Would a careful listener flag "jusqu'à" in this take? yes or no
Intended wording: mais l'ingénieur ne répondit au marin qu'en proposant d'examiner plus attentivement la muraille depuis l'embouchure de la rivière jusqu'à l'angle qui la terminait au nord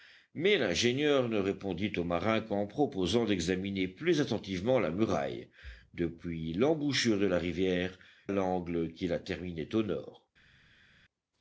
yes